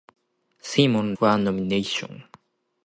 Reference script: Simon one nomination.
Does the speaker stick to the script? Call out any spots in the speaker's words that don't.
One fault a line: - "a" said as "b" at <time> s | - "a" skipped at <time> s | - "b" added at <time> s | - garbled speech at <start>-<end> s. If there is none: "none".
none